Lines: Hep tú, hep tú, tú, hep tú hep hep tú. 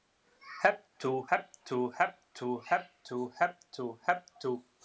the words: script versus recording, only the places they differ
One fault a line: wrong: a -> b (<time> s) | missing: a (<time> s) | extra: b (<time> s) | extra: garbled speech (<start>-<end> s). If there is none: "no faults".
extra: hep (2.0 s)
extra: tú (3.7 s)